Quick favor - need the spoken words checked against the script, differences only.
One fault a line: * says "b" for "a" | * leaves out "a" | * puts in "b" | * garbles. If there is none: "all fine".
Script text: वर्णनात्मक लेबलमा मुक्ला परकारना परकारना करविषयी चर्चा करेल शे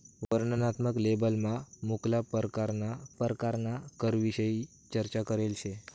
all fine